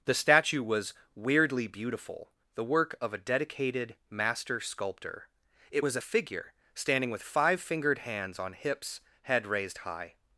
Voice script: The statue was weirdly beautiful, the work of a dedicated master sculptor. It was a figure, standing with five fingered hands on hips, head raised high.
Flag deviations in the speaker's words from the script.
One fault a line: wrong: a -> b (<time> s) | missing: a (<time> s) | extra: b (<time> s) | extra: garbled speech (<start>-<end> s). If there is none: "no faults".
no faults